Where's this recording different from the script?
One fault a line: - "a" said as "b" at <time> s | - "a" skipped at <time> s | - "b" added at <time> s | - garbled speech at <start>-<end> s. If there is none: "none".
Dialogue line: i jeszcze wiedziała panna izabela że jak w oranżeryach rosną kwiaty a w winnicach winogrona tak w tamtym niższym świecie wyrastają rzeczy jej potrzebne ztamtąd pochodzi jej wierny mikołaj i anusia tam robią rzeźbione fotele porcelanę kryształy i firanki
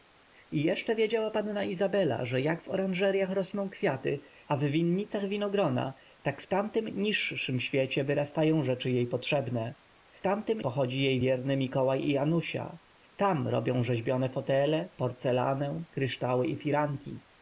- "ztamtąd" said as "tamtym" at 10.2 s